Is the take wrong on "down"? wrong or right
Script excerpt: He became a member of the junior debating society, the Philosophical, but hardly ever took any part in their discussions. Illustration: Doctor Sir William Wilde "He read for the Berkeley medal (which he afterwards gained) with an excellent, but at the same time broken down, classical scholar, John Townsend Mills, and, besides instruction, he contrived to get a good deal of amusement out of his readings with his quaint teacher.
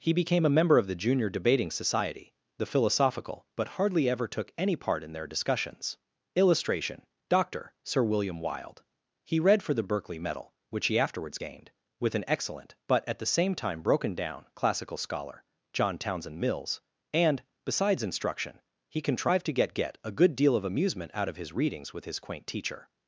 right